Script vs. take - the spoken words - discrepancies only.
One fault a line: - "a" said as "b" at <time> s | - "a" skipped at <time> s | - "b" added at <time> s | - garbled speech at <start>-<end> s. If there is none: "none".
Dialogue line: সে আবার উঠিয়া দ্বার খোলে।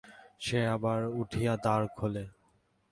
none